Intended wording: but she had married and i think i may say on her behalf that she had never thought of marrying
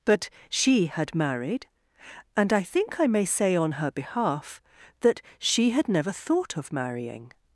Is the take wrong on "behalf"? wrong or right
right